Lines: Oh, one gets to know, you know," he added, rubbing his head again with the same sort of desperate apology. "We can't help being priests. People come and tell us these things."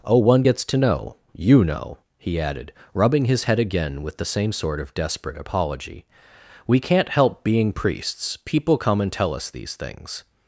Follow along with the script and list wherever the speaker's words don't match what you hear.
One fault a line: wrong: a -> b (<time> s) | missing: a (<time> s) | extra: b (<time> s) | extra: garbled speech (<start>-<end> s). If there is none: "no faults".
no faults